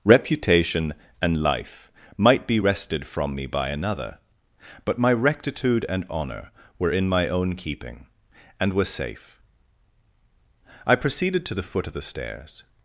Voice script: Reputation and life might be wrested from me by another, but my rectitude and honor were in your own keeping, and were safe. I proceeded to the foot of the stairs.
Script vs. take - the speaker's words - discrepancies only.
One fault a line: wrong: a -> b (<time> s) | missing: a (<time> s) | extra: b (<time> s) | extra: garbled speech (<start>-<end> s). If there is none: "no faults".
wrong: your -> my (7.1 s)